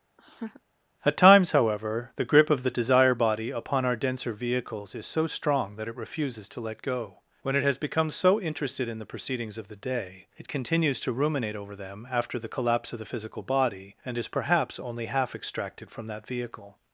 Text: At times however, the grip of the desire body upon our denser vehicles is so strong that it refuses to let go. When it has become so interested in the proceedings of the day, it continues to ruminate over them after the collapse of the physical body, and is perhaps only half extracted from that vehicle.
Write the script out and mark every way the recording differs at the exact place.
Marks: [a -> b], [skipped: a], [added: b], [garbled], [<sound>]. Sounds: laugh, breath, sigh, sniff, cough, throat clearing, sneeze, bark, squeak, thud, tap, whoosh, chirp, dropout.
[laugh] At times however, the grip of the desire body upon our denser vehicles is so strong that it refuses to let go. When it has become so interested in the proceedings of the day, it continues to ruminate over them after the collapse of the physical body, and is perhaps only half extracted from that vehicle.